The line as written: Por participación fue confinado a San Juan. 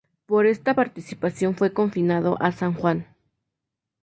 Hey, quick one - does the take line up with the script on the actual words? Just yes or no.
no